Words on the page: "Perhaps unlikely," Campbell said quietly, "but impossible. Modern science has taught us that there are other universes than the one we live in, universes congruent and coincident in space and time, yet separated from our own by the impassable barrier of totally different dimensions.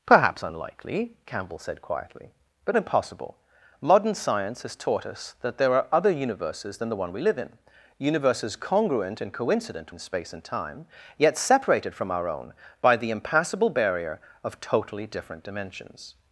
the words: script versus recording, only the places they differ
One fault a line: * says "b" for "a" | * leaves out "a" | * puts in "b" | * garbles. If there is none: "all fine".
all fine